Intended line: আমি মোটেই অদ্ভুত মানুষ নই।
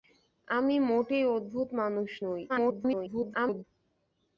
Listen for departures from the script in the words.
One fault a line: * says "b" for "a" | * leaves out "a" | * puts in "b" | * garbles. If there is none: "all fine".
* garbles